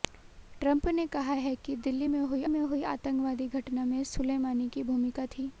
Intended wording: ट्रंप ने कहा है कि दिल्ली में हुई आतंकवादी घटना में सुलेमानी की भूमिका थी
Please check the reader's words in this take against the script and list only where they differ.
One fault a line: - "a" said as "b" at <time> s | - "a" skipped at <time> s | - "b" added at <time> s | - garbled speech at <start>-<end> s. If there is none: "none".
- "में हुई" added at 2.5 s